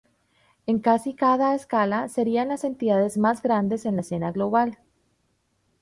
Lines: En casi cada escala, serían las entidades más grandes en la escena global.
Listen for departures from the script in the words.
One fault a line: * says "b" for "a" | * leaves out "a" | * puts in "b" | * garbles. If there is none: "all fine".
all fine